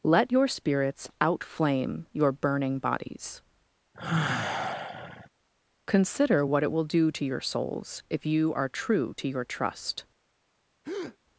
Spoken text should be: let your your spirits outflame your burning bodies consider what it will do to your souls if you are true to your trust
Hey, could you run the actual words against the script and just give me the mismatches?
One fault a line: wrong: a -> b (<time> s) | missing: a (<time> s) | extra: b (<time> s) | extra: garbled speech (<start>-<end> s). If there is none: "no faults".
missing: your (0.5 s)